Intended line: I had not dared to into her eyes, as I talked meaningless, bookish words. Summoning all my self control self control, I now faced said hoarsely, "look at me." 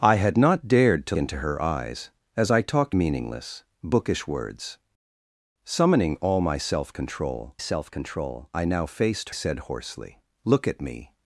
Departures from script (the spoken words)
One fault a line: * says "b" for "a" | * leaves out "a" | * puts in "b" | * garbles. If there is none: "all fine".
all fine